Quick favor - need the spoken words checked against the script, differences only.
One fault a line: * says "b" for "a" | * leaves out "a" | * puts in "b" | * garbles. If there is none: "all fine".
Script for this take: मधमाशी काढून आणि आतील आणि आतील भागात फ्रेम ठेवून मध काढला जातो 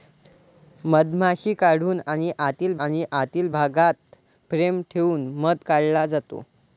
all fine